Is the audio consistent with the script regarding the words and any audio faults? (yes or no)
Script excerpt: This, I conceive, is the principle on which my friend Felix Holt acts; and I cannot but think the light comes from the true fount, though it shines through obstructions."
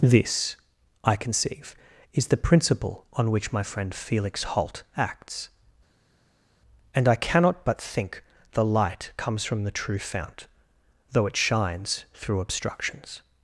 yes